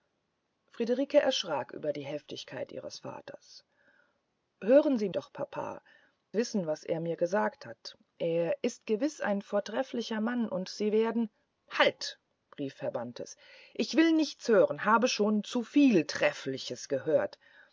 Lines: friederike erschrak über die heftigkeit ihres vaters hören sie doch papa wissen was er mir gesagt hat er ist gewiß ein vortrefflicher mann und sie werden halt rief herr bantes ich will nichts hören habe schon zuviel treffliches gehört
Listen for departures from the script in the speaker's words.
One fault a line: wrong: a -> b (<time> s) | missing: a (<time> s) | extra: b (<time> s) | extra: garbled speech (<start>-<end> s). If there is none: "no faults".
no faults